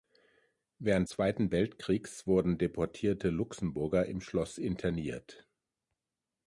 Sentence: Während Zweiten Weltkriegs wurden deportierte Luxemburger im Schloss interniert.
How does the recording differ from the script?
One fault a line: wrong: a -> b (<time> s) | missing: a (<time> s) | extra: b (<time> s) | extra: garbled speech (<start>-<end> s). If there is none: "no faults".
no faults